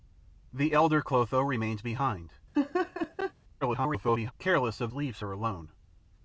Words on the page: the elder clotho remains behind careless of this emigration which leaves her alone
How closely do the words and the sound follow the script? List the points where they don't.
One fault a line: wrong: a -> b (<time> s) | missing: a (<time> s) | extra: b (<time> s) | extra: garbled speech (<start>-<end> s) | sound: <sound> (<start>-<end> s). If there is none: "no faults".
sound: laugh (2.5-3.3 s)
extra: garbled speech (3.6-4.3 s)
missing: this emigration which (4.9 s)